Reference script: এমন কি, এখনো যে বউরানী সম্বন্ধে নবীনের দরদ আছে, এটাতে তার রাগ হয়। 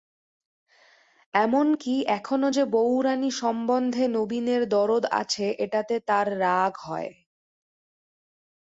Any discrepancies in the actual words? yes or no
no